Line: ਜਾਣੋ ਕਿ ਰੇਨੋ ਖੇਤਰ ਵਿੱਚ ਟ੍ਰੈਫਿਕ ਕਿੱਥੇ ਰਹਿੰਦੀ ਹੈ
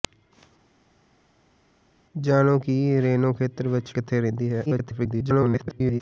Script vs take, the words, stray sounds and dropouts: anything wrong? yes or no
yes